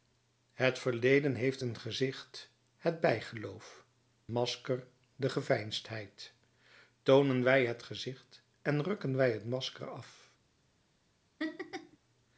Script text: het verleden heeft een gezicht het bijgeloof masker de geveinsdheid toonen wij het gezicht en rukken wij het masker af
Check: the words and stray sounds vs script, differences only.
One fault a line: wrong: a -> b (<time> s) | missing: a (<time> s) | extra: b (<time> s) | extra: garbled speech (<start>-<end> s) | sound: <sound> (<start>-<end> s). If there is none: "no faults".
sound: laugh (11.4-12.0 s)